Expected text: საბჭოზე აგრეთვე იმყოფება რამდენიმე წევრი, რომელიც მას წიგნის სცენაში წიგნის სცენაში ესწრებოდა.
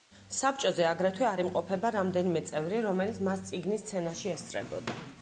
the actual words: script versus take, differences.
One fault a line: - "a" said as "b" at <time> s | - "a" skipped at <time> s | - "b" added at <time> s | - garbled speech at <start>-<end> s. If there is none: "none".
- "არ" added at 1.3 s
- "წიგნის სცენაში" skipped at 4.3 s